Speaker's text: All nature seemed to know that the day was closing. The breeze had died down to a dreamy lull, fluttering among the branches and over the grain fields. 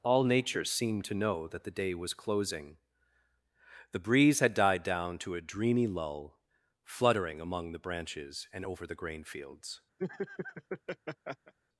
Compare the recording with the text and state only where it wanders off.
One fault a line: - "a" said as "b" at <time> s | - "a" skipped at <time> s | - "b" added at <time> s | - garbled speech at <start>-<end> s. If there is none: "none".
none